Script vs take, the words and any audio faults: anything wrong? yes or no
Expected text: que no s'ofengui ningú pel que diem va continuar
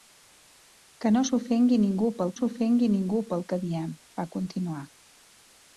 yes